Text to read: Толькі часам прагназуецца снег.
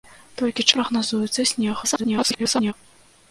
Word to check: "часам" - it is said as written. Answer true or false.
false